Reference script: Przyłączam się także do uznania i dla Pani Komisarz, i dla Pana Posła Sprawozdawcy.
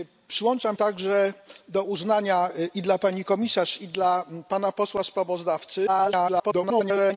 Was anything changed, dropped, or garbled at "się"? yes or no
yes